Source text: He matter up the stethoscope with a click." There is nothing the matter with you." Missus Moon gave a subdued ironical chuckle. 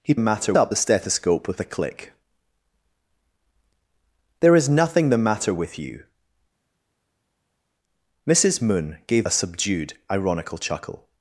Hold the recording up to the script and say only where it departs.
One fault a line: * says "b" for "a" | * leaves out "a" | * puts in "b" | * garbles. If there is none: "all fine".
all fine